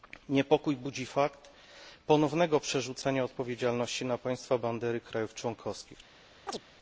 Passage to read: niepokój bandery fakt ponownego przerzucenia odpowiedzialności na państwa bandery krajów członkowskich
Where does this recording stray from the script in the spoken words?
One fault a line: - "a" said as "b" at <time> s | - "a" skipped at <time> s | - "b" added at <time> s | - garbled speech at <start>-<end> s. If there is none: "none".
- "bandery" said as "budzi" at 0.8 s